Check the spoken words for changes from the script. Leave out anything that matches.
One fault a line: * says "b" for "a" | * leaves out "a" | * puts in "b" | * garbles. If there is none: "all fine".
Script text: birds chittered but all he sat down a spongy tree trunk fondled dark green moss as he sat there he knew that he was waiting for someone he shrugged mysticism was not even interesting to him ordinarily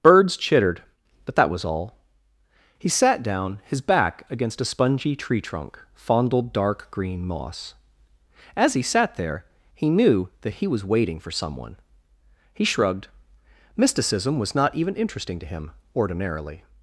* puts in "that was"
* puts in "his back against"